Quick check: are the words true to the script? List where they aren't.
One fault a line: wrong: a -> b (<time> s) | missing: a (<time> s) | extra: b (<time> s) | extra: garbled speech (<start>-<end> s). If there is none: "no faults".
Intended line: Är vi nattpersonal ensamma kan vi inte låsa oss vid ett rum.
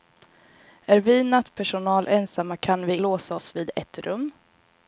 missing: inte (3.0 s)